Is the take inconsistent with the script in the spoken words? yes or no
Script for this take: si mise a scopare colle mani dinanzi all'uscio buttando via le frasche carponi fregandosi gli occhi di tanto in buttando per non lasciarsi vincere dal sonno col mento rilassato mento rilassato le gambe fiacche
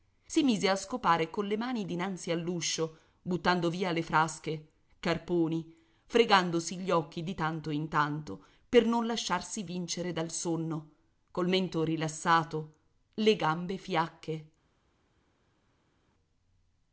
yes